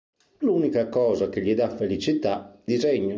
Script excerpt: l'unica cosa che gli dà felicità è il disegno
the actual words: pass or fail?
fail